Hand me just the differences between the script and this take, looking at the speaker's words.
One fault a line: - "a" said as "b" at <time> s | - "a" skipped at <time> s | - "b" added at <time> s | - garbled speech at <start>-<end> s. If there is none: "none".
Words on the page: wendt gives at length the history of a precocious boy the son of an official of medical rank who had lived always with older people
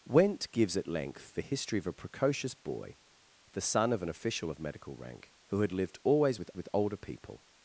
- "with" added at 6.5 s